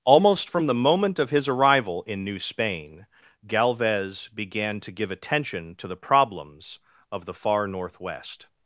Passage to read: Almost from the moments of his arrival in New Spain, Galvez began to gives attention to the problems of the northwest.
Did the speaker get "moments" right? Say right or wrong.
wrong